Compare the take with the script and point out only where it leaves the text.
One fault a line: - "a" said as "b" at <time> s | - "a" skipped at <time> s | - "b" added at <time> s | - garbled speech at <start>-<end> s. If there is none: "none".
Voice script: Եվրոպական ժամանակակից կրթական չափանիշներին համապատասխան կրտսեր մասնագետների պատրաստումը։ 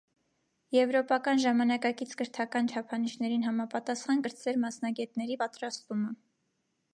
none